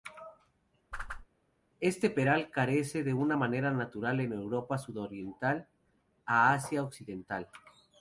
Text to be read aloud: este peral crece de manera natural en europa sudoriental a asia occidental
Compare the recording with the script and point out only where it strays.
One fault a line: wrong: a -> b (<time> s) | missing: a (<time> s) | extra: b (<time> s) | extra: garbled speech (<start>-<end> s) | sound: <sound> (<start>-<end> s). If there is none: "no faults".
sound: whoosh (0.9-1.3 s)